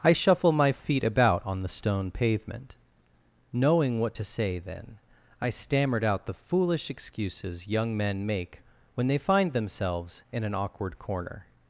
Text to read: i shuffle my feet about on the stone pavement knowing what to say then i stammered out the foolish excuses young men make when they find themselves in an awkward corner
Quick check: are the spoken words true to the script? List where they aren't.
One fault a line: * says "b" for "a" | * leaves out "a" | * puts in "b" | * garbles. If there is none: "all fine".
all fine